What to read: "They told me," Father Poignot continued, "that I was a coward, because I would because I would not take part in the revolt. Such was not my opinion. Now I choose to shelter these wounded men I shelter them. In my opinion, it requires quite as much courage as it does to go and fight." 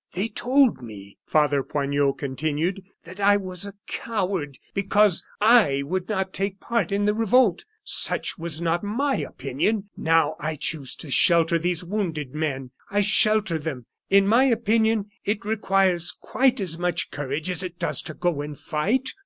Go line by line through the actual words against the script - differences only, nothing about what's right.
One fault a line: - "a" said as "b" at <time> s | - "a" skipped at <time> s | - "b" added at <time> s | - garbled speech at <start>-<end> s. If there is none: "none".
- "because I would" skipped at 6.1 s